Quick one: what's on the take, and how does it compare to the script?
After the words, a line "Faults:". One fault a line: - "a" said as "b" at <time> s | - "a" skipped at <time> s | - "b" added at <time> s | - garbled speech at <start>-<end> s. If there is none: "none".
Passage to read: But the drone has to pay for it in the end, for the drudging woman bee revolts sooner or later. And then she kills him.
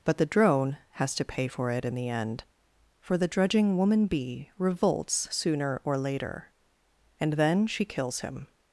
But the drone has to pay for it in the end, for the drudging woman bee revolts sooner or later. And then she kills him.
Faults:
none